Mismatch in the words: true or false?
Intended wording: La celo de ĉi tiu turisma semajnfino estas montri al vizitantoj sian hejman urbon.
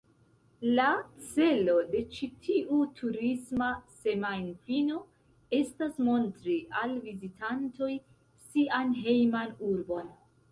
false